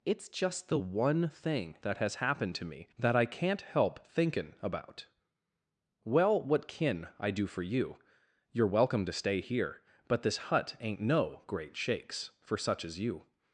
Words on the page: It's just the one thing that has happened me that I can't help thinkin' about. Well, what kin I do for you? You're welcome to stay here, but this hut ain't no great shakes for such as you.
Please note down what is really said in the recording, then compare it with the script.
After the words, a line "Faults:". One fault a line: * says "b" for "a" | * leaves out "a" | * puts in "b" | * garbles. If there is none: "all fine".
It's just the one thing that has happened to me that I can't help thinkin' about. Well, what kin I do for you? You're welcome to stay here, but this hut ain't no great shakes for such as you.
Faults:
* puts in "to"